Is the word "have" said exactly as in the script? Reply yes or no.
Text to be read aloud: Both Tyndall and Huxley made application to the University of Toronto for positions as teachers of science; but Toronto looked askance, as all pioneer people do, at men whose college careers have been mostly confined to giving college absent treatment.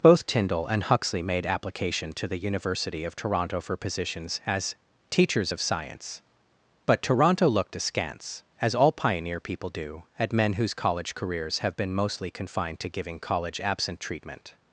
yes